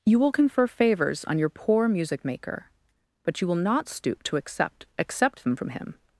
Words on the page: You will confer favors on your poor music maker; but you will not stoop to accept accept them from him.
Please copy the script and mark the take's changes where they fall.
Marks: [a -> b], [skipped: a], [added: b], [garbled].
You will confer favors on your poor music maker; but you will not stoop to accept accept them from him.